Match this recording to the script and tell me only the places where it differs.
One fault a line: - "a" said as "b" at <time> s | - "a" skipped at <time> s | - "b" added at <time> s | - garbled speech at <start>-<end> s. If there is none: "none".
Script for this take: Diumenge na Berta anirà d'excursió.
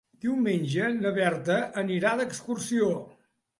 none